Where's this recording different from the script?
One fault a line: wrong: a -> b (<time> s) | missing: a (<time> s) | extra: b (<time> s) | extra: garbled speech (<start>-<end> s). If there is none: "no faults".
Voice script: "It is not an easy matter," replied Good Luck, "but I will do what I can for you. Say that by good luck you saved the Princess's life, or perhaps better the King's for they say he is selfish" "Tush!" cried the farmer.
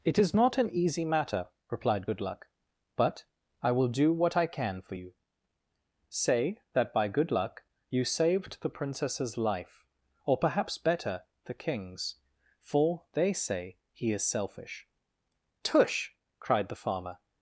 no faults